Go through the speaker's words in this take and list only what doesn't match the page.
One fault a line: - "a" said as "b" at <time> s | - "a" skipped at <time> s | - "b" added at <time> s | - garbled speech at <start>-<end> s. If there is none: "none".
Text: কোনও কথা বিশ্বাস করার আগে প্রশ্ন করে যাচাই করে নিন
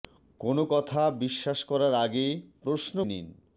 - "করে যাচাই করে" skipped at 3.0 s